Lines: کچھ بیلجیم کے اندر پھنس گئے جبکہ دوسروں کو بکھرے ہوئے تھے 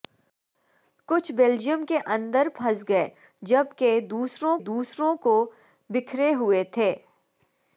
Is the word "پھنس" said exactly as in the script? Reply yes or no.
yes